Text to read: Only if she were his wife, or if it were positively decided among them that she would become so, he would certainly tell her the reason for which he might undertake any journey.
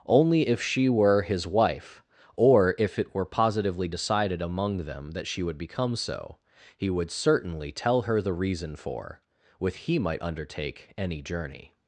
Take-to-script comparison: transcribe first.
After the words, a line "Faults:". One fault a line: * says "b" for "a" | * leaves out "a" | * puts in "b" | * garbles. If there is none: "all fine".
Only if she were his wife, or if it were positively decided among them that she would become so, he would certainly tell her the reason for with he might undertake any journey.
Faults:
* says "with" for "which"